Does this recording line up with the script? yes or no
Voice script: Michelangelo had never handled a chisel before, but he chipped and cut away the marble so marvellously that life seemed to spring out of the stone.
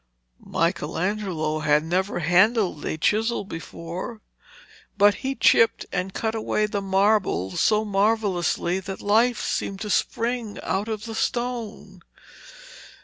yes